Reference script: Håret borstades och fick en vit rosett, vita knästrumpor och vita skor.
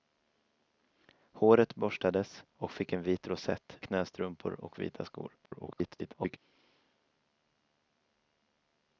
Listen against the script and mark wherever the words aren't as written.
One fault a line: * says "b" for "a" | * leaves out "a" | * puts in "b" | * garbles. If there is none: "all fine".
* leaves out "vita"
* garbles